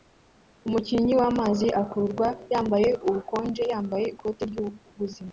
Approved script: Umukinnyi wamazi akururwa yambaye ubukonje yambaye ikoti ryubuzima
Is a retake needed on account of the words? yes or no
no